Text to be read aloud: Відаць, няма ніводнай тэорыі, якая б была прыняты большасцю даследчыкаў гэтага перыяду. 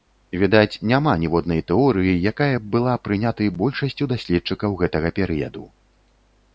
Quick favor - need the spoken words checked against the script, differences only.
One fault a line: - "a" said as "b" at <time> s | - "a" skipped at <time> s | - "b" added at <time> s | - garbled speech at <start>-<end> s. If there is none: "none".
none